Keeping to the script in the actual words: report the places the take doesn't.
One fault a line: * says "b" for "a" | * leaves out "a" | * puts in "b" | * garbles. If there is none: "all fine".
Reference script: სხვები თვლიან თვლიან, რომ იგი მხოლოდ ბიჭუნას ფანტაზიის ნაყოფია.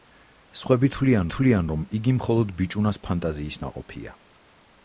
all fine